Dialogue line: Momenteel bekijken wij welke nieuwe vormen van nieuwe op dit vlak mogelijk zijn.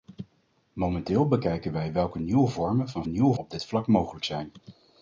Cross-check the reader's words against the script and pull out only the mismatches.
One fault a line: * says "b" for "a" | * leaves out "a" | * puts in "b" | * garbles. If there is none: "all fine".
all fine